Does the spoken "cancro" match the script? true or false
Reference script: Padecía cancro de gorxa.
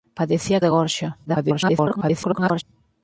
false